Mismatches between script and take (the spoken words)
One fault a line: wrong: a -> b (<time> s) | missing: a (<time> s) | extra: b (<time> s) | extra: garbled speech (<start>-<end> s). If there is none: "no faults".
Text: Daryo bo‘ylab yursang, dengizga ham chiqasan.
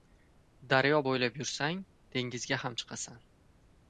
no faults